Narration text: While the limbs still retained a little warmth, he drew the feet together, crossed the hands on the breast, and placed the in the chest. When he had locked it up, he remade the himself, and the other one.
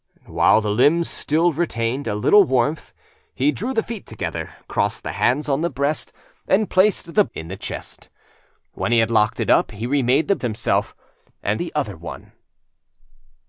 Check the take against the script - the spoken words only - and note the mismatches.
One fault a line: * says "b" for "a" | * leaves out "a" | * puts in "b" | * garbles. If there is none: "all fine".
all fine